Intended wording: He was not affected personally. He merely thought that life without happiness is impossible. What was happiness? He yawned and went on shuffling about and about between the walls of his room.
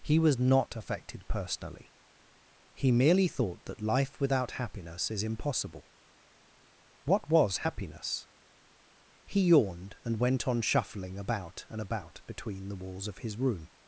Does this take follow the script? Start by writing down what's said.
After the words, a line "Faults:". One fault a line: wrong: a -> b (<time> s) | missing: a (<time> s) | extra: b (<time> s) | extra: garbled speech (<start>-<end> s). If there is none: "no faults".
He was not affected personally. He merely thought that life without happiness is impossible. What was happiness? He yawned and went on shuffling about and about between the walls of his room.
Faults:
no faults